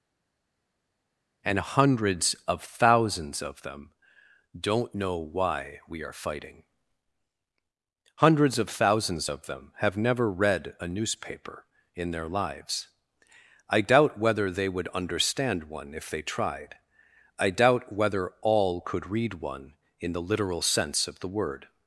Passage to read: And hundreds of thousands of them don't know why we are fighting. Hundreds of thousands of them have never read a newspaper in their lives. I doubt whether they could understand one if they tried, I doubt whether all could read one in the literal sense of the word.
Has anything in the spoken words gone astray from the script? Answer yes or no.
yes